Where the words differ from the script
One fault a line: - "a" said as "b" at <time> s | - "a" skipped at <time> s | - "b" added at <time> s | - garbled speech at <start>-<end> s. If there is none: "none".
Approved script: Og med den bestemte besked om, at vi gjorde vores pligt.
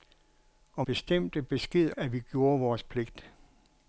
- "med den" skipped at 0.9 s
- "om" skipped at 1.9 s